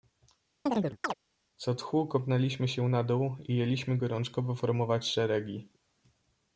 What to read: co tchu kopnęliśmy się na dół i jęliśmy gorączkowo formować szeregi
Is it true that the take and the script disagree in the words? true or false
false